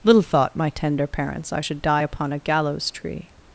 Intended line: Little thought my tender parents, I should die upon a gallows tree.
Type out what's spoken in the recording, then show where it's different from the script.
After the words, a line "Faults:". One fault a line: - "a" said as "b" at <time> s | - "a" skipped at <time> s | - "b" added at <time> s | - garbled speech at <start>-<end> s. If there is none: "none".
Little thought my tender parents, I should die upon a gallows tree.
Faults:
none